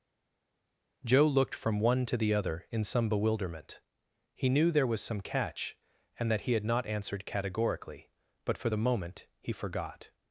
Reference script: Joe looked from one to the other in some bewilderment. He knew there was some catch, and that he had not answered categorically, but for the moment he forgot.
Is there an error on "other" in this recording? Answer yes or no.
no